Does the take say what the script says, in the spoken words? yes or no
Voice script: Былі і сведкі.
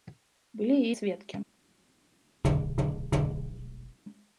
yes